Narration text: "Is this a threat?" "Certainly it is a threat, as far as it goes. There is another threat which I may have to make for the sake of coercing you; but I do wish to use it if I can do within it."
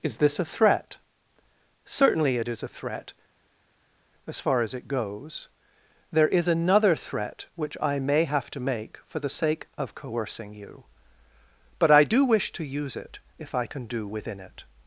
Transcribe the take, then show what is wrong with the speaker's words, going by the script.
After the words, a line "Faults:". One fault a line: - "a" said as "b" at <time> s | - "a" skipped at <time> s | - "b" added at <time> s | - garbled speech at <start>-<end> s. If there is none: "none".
"Is this a threat?" "Certainly it is a threat, as far as it goes. There is another threat which I may have to make for the sake of coercing you; but I do wish to use it if I can do within it."
Faults:
none